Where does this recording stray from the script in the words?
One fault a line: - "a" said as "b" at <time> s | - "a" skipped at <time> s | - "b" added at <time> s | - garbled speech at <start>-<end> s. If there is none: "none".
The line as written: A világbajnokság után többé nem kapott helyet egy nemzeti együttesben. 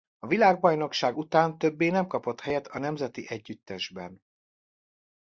- "egy" said as "a" at 2.7 s